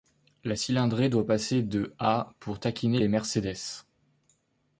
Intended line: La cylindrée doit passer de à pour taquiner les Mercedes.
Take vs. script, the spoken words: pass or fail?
pass